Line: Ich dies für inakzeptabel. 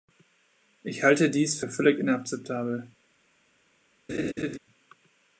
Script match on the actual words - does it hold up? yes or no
no